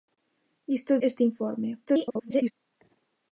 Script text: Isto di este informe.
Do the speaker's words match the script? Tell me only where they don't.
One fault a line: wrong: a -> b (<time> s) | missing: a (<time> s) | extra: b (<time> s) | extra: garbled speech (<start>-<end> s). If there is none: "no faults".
missing: di (1.0 s)
extra: garbled speech (1.9-2.5 s)